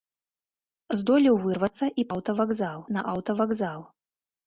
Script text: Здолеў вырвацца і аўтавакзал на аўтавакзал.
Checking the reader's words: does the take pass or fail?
pass